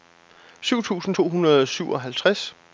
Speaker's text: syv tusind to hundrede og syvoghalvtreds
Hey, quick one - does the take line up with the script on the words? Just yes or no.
yes